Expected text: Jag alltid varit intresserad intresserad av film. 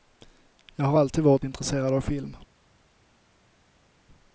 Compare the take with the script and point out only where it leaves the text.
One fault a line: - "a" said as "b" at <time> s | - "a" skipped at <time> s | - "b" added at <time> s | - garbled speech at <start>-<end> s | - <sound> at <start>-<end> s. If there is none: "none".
- "har" added at 0.8 s
- "intresserad" skipped at 1.9 s